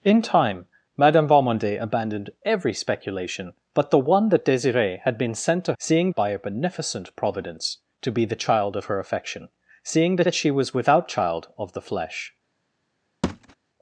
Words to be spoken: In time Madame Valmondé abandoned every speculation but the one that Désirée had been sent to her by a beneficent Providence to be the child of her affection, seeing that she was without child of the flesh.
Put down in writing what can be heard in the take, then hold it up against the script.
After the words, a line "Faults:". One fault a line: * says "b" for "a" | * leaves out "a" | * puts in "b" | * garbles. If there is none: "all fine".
In time Madame Valmondé abandoned every speculation but the one that Désirée had been sent to seeing by a beneficent Providence to be the child of her affection, seeing that that she was without child of the flesh.
Faults:
* says "seeing" for "her"
* puts in "that"